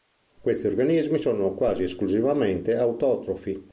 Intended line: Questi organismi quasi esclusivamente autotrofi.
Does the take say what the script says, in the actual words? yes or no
no